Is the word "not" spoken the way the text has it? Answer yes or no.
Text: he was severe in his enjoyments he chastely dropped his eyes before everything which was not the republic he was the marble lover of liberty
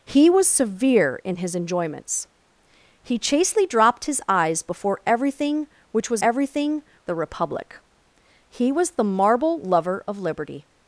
no